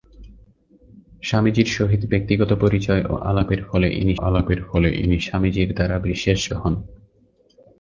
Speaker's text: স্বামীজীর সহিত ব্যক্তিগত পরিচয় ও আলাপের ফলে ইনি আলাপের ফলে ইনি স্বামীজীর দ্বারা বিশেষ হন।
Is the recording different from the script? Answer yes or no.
no